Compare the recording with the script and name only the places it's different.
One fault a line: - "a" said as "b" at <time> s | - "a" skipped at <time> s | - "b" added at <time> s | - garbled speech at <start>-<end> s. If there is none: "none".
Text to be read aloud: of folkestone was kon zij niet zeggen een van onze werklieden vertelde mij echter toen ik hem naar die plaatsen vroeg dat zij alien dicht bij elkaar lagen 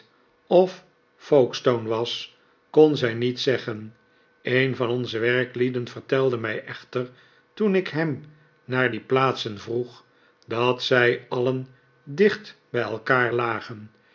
none